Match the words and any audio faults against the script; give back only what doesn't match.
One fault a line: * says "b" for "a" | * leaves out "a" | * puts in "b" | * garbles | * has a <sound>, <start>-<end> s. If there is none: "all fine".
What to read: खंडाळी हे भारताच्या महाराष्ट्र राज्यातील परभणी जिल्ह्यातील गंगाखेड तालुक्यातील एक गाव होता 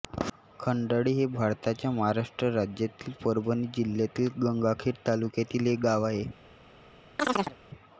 * says "आहे" for "होता"
* has a chirp, 7.2-7.6 s